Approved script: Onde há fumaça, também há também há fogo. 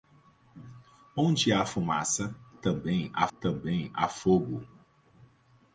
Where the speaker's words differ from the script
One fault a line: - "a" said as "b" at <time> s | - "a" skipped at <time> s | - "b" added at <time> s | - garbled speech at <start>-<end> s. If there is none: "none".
none